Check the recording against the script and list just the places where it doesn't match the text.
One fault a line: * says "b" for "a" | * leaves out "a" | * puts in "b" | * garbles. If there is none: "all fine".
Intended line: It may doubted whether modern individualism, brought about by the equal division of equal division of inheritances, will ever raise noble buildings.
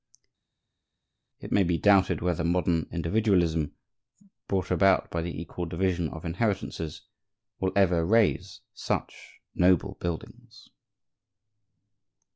* puts in "be"
* leaves out "equal division of"
* puts in "such"